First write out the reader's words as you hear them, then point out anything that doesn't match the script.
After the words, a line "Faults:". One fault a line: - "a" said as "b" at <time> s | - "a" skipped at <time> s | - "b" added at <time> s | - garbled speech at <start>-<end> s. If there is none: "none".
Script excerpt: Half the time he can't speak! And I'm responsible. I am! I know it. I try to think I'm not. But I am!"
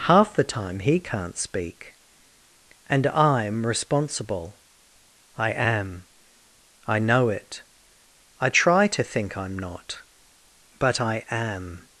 Half the time he can't speak! And I'm responsible. I am! I know it. I try to think I'm not. But I am!"
Faults:
none